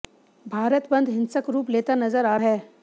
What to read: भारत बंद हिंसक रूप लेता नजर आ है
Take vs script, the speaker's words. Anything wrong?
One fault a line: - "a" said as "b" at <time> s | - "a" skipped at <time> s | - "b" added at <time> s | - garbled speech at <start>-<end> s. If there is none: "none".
none